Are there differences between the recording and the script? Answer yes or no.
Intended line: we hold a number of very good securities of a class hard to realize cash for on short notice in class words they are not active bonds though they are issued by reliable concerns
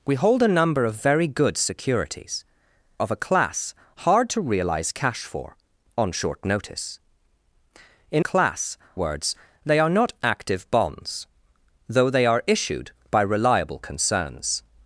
no